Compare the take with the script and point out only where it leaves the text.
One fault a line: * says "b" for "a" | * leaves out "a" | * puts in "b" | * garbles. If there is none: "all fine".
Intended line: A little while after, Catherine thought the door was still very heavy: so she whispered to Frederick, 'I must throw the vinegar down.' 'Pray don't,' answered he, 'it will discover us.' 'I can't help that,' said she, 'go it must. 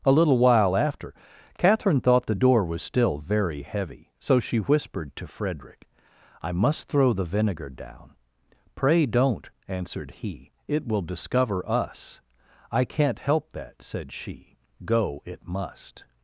all fine